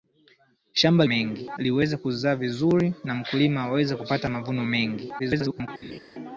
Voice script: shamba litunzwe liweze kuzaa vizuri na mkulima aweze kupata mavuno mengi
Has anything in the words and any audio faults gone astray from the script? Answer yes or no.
yes